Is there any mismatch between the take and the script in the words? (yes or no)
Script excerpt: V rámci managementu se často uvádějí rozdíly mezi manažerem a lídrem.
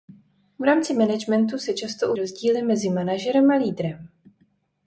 yes